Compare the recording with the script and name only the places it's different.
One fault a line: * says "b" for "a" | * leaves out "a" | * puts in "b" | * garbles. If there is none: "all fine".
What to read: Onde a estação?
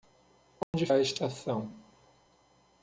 all fine